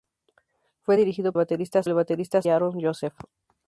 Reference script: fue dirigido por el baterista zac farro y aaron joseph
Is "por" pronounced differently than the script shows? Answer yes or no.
yes